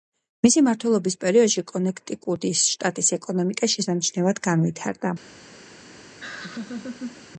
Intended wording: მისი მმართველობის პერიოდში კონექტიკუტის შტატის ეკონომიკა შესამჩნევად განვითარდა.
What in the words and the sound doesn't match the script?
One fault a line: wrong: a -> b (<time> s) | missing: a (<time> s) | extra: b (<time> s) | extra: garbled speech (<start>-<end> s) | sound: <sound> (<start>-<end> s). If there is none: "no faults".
sound: laugh (6.2-7.3 s)